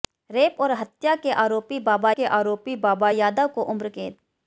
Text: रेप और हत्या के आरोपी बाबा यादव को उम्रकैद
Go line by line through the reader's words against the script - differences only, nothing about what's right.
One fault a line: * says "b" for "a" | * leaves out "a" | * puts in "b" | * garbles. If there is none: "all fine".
* puts in "के आरोपी बाबा"